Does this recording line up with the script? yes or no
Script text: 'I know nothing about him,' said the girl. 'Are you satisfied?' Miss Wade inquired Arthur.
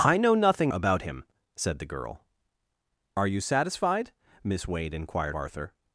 yes